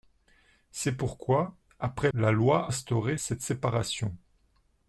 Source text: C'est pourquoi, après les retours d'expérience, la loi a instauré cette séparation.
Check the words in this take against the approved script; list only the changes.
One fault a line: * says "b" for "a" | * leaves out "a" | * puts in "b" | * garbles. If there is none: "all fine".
* leaves out "les retours d'expérience"
* leaves out "a"